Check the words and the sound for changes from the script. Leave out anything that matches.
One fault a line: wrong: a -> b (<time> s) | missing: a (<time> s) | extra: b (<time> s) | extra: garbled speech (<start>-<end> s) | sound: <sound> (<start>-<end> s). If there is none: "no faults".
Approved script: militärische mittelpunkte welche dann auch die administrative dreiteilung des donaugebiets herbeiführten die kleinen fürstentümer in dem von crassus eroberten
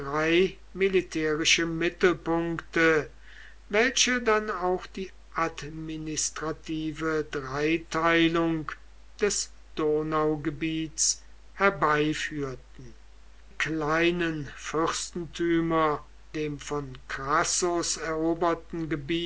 missing: die (12.9 s)
missing: in (16.1 s)